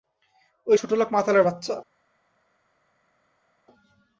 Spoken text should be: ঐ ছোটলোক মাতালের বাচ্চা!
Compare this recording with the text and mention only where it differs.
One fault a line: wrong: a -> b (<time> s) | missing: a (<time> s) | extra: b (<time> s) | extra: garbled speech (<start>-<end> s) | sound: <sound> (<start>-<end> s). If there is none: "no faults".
no faults